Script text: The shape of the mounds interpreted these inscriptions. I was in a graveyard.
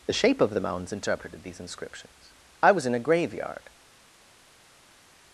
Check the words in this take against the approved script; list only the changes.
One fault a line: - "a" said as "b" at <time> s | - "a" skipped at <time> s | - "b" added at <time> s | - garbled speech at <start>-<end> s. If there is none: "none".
none